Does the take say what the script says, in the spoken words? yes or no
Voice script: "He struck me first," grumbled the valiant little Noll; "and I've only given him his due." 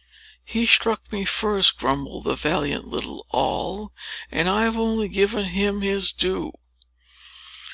yes